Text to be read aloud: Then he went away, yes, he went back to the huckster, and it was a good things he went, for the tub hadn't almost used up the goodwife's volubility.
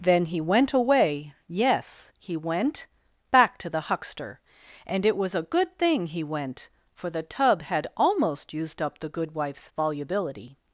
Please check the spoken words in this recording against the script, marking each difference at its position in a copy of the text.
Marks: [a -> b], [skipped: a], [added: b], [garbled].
Then he went away, yes, he went back to the huckster, and it was a good [things -> thing] he went, for the tub [hadn't -> had] almost used up the goodwife's volubility.